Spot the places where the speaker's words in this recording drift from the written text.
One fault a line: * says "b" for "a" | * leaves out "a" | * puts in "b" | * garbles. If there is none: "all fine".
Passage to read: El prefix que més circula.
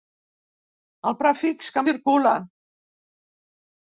* leaves out "més"